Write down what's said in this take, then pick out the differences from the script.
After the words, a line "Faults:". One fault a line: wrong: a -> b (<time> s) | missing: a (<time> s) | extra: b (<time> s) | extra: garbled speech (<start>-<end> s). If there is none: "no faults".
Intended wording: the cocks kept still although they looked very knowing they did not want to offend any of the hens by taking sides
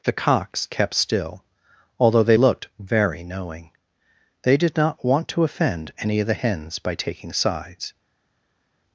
the cocks kept still although they looked very knowing they did not want to offend any of the hens by taking sides
Faults:
no faults